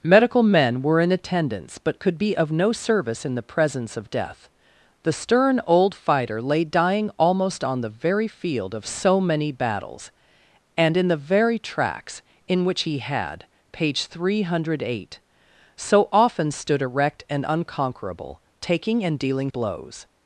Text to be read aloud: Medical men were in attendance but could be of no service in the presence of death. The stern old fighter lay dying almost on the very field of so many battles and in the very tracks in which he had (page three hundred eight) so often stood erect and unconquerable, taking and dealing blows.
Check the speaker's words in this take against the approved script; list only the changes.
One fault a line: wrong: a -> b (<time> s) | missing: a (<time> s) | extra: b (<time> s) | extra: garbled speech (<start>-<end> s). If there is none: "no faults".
no faults